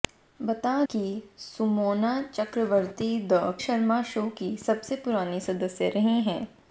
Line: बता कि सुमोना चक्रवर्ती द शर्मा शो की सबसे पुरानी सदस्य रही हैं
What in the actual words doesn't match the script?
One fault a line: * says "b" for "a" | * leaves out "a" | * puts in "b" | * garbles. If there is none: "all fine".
all fine